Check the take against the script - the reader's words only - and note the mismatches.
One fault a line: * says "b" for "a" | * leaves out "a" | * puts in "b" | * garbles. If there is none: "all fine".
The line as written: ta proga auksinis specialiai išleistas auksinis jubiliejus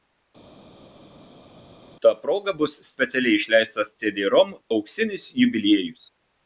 * says "bus" for "auksinis"
* puts in "cd rom"